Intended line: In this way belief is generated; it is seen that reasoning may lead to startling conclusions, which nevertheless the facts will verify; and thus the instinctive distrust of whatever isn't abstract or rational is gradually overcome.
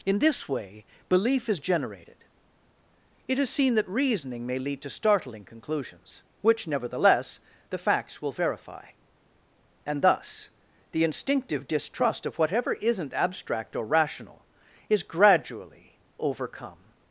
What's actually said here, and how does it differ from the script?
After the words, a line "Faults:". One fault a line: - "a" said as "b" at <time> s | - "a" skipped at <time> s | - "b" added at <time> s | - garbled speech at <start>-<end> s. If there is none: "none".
In this way belief is generated; it is seen that reasoning may lead to startling conclusions, which nevertheless the facts will verify; and thus the instinctive distrust of whatever isn't abstract or rational is gradually overcome.
Faults:
none